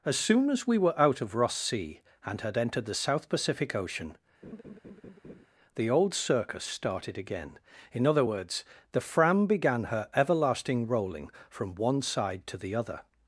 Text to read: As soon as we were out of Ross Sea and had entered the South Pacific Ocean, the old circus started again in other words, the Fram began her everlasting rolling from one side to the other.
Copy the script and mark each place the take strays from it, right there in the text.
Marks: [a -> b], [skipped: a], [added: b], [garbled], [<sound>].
As soon as we were out of Ross Sea and had entered the South Pacific Ocean, [laugh] the old circus started again in other words, the Fram began her everlasting rolling from one side to the other.